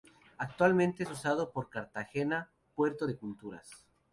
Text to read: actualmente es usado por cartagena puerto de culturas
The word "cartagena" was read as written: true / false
true